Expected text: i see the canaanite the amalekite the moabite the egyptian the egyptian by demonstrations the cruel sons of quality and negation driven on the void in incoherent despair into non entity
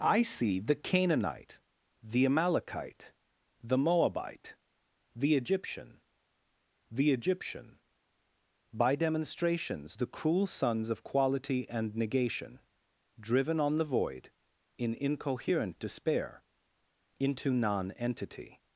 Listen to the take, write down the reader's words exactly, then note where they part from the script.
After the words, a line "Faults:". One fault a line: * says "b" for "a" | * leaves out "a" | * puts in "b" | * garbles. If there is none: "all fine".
i see the canaanite the amalekite the moabite the egyptian the egyptian by demonstrations the cruel sons of quality and negation driven on the void in incoherent despair into non entity
Faults:
all fine